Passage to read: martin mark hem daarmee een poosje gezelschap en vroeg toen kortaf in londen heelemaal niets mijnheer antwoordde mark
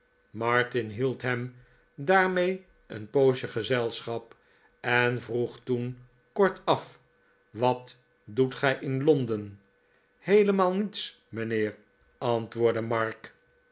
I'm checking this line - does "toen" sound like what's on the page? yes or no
yes